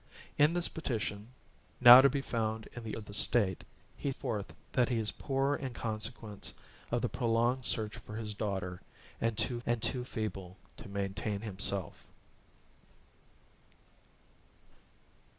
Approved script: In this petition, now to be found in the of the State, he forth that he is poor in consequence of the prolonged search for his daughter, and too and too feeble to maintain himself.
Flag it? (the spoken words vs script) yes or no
no